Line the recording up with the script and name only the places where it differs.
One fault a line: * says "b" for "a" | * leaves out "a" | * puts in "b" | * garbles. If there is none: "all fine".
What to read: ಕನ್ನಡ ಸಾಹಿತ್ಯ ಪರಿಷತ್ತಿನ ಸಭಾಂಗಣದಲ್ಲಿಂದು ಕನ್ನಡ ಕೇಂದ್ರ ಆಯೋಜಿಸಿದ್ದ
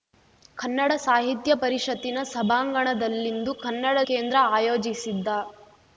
all fine